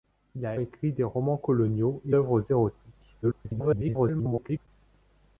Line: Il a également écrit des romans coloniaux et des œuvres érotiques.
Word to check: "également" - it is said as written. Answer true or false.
false